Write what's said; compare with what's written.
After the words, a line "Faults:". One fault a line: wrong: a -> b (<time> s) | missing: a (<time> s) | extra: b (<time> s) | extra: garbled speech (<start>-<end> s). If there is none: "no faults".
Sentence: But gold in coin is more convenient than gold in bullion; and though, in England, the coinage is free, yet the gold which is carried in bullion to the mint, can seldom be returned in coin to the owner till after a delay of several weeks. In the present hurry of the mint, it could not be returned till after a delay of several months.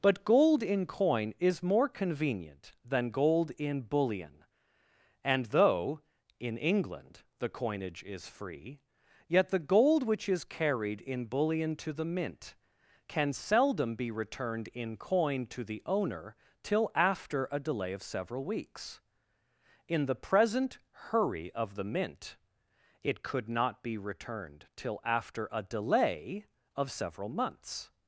But gold in coin is more convenient than gold in bullion; and though, in England, the coinage is free, yet the gold which is carried in bullion to the mint, can seldom be returned in coin to the owner till after a delay of several weeks. In the present hurry of the mint, it could not be returned till after a delay of several months.
Faults:
no faults